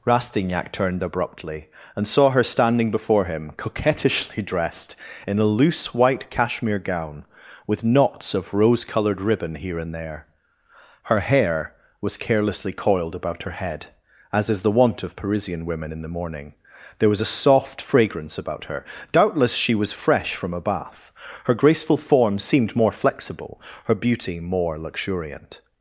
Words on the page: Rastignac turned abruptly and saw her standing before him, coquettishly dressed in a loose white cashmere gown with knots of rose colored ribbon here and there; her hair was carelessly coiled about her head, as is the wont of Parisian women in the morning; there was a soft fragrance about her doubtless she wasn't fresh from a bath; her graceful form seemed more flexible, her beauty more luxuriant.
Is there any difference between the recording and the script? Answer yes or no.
yes